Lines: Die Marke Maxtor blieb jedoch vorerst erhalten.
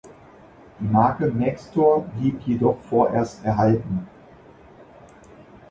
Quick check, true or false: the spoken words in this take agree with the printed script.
true